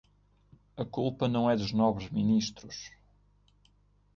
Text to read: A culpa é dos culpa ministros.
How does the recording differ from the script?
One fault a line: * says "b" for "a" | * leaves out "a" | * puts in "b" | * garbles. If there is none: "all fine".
* puts in "não"
* says "nobres" for "culpa"